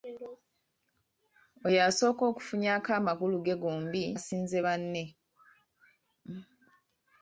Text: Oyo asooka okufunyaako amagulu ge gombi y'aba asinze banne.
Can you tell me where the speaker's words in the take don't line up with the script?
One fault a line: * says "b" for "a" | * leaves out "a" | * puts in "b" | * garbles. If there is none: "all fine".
* leaves out "y'aba"